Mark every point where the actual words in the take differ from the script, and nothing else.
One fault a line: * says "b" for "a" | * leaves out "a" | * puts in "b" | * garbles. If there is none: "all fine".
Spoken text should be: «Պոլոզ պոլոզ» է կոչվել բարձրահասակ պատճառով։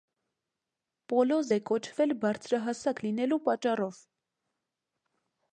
* leaves out "պոլոզ"
* puts in "լինելու"